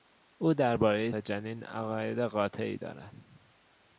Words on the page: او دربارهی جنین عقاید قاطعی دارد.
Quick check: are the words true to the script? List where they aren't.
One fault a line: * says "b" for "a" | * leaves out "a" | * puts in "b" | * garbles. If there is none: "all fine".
all fine